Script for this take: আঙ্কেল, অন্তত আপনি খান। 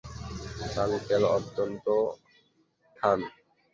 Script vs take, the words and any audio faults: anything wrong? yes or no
yes